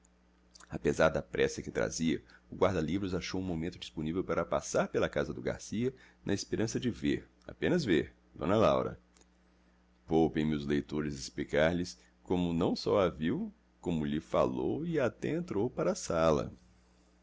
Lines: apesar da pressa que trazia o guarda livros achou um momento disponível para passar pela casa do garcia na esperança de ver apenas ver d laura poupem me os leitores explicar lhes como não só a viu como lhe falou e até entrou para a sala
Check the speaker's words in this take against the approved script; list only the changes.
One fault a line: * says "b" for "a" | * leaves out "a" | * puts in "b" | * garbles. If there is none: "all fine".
all fine